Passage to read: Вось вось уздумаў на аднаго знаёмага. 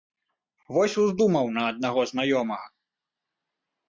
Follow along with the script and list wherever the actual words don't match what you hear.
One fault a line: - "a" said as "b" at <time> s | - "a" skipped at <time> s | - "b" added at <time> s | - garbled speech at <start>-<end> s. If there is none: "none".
- "вось" skipped at 0.9 s